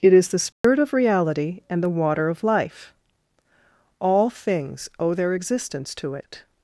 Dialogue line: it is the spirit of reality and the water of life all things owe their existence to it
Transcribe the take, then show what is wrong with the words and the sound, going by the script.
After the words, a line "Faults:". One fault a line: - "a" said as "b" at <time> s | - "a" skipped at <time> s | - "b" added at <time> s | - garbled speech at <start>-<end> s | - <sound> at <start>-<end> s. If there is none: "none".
it is the spirit of reality and the water of life all things owe their existence to it
Faults:
- dropout at 0.5-0.6 s